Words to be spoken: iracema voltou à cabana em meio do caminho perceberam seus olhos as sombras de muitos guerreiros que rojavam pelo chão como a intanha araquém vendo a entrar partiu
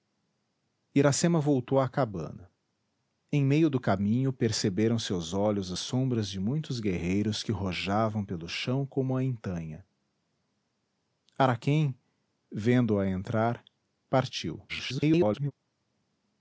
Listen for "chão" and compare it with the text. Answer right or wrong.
right